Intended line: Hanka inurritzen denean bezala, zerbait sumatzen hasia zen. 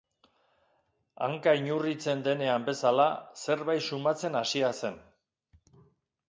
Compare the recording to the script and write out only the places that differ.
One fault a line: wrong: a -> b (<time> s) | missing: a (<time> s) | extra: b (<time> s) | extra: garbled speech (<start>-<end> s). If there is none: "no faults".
no faults